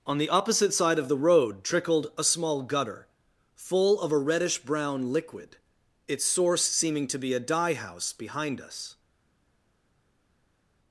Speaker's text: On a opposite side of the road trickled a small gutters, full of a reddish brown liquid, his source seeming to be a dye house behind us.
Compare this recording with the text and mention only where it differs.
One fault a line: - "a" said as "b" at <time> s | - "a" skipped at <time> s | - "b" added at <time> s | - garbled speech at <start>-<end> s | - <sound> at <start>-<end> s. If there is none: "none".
- "a" said as "the" at 0.2 s
- "gutters" said as "gutter" at 2.6 s
- "his" said as "its" at 6.1 s